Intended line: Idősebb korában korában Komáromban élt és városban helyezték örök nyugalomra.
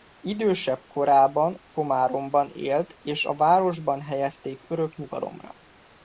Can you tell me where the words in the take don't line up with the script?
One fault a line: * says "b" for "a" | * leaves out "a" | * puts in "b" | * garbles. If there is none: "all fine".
* leaves out "korában"
* puts in "a"